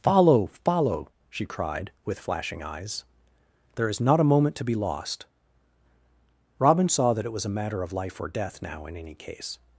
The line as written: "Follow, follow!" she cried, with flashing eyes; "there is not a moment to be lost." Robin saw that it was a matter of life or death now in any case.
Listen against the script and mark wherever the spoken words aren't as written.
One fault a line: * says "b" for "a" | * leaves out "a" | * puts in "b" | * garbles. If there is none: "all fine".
all fine